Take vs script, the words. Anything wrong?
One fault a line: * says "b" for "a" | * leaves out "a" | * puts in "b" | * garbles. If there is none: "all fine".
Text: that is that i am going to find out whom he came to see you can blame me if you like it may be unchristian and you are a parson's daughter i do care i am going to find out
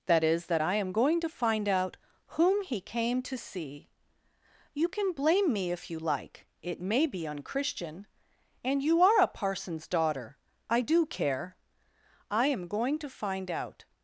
all fine